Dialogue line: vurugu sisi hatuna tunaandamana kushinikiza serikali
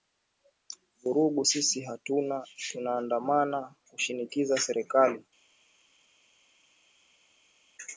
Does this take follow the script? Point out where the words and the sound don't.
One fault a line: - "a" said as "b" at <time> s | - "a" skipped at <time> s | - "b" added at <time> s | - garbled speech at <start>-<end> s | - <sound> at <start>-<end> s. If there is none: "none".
none